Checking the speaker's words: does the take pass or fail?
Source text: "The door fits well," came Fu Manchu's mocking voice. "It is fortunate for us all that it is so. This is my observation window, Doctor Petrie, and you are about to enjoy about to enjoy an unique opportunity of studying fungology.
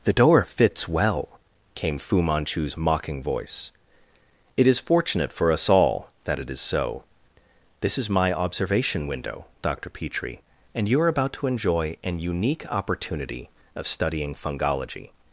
fail